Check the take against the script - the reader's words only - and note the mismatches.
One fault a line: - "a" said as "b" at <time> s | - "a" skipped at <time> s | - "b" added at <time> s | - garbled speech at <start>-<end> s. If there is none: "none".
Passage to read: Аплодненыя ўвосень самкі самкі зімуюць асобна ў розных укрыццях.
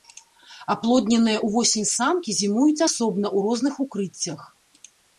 - "самкі" skipped at 2.3 s